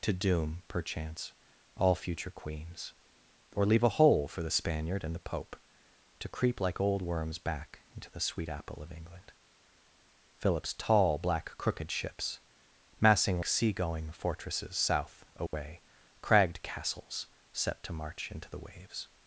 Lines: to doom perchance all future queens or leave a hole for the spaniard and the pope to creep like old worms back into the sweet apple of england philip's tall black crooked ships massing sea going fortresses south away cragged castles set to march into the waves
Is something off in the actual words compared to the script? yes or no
no